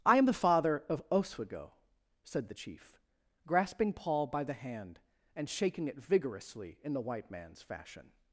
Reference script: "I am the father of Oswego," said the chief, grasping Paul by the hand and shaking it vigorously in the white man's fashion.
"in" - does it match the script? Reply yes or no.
yes